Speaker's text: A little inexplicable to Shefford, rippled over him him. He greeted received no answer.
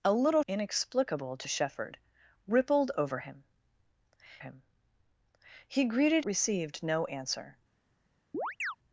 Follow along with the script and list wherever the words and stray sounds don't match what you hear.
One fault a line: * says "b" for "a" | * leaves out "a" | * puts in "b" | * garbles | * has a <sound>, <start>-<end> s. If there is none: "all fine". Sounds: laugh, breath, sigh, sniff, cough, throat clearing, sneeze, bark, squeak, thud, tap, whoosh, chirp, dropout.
* has a chirp, 8.3-8.8 s